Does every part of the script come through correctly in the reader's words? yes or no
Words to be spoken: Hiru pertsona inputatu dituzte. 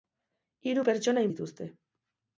no